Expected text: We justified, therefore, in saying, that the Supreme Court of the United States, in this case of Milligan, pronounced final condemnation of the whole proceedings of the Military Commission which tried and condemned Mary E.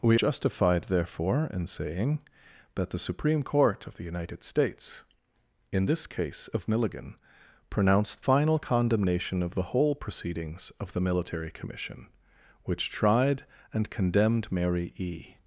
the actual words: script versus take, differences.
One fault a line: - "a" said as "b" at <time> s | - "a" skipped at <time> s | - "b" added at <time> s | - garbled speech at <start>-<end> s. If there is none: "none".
none